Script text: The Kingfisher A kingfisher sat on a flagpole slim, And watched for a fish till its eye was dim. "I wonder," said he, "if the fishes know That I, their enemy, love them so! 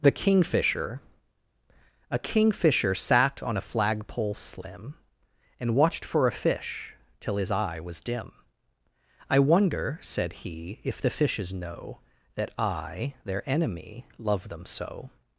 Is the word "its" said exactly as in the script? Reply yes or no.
no